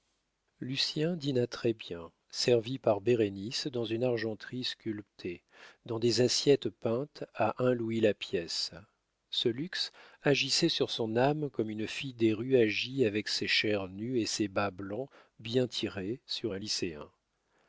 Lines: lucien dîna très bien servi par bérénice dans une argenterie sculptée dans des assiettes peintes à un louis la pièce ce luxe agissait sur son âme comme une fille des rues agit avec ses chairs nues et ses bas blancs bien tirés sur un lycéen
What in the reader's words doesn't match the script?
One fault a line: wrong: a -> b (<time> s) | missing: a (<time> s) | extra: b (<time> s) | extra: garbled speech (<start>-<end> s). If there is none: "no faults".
no faults